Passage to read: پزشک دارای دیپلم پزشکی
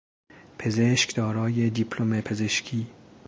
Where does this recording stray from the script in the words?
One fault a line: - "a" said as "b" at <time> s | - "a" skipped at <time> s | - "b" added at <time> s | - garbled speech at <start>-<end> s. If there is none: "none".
none